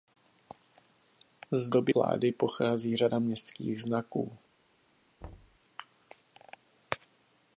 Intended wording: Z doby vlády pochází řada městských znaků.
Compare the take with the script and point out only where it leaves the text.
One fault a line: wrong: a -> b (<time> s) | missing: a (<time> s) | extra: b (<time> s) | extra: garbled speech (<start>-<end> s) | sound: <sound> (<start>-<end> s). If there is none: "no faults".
sound: thud (5.2-5.6 s)